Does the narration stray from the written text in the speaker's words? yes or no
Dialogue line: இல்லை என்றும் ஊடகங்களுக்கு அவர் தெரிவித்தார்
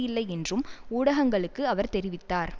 no